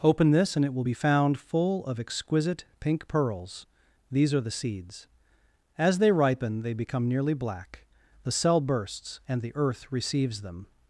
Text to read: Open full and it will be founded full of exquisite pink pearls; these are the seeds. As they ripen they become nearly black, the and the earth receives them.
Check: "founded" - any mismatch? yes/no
yes